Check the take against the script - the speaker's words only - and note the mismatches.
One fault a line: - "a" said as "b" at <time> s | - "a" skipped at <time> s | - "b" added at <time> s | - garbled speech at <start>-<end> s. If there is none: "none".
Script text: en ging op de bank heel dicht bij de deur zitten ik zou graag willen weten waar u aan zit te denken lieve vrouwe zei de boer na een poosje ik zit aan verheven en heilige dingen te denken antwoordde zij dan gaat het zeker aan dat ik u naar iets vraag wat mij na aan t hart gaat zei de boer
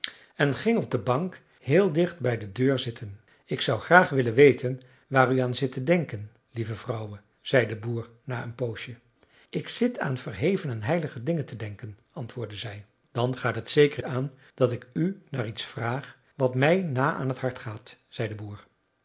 none